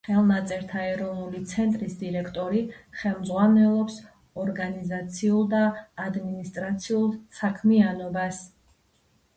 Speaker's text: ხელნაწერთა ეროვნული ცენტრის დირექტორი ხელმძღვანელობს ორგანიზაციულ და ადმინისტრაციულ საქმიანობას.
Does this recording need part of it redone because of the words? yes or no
no